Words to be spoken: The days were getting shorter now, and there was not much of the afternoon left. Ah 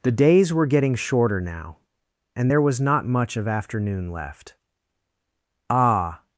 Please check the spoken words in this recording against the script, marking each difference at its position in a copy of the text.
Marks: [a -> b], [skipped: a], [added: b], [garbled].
The days were getting shorter now, and there was not much of [skipped: the] afternoon left. Ah